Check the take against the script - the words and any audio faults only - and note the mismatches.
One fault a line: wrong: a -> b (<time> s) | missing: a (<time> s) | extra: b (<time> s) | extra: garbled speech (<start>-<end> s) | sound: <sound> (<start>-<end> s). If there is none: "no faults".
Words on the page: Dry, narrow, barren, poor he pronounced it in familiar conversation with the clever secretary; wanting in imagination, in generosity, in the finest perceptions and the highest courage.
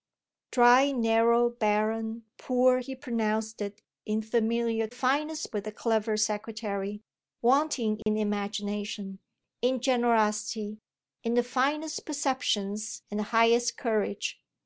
wrong: conversation -> finest (4.9 s)
sound: dropout (8.0-8.1 s)